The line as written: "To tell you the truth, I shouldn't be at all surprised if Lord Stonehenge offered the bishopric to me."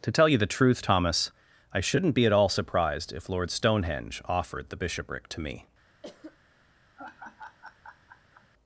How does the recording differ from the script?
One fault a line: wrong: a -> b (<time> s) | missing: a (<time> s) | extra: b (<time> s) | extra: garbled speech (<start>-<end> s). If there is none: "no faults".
extra: Thomas (0.8 s)